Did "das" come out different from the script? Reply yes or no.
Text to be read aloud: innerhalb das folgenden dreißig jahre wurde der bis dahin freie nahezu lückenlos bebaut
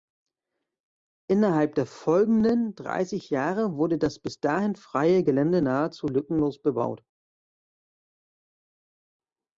yes